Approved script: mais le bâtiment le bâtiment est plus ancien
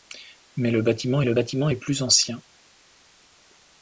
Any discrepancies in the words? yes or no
no